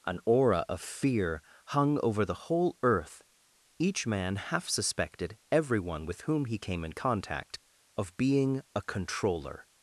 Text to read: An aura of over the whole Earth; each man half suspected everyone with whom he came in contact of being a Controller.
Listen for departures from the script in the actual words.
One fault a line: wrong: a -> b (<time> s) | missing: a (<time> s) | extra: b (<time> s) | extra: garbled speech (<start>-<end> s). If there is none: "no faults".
extra: fear hung (0.8 s)